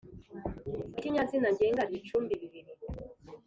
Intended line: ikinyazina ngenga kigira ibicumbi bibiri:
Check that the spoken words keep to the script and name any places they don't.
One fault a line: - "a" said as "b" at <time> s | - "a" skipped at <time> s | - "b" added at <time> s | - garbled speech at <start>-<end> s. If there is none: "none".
- "kigira" skipped at 1.8 s